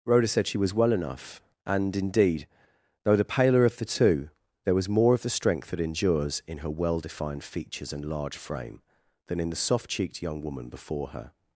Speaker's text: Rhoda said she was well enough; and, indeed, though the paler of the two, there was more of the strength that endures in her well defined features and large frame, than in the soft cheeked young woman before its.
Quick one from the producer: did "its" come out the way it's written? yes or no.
no